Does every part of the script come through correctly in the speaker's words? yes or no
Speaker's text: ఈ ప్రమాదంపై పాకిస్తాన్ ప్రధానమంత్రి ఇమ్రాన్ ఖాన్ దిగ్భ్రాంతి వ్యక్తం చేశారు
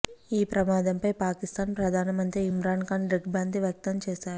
yes